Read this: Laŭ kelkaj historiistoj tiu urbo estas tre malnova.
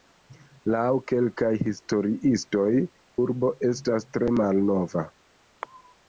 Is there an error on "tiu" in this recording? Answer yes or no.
yes